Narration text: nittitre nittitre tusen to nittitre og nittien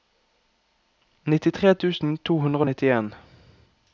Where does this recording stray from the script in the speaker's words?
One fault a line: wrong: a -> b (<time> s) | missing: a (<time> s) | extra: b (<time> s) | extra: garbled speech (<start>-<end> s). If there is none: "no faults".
missing: nittitre (1.8 s)
wrong: nittitre -> hundre (2.5 s)